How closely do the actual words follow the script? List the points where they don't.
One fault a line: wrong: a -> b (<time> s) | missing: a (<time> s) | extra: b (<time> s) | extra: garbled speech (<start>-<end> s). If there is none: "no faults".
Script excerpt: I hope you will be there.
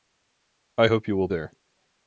missing: be (1.3 s)